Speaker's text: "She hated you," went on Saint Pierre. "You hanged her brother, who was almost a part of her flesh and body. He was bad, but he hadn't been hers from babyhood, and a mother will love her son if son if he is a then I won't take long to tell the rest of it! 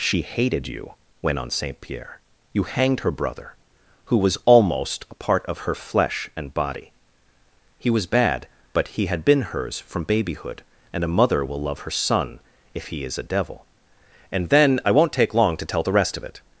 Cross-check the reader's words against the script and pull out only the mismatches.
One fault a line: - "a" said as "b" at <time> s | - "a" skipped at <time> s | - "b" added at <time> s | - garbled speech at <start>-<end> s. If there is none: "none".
- "hadn't" said as "had" at 9.1 s
- "son if" skipped at 12.9 s
- "devil And" added at 13.3 s